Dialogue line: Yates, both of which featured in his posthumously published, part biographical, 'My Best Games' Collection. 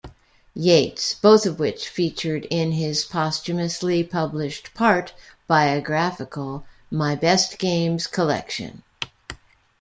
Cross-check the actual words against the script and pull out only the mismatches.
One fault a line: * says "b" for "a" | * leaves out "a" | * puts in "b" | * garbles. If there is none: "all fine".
all fine